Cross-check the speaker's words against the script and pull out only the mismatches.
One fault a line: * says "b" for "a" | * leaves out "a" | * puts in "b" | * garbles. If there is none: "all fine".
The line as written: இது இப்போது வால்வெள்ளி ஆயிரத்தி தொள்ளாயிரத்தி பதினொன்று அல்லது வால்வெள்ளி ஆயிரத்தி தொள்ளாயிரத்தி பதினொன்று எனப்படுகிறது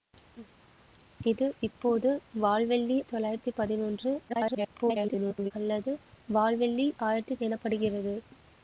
* leaves out "ஆயிரத்தி"
* garbles
* leaves out "தொள்ளாயிரத்தி பதினொன்று"